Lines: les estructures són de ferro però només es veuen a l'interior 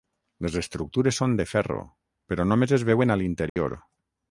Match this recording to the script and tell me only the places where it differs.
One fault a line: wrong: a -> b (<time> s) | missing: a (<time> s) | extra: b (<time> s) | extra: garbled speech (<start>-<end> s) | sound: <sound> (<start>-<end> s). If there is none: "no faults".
sound: dropout (3.5-3.6 s)